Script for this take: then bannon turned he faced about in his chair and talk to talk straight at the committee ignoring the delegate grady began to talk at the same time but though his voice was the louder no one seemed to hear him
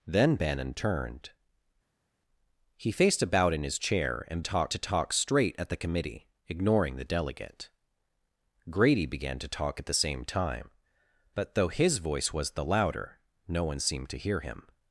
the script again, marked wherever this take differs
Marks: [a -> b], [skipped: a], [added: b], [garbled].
then bannon turned he faced about in his chair and talk to talk straight at the committee ignoring the delegate grady began to talk at the same time but though his voice was the louder no one seemed to hear him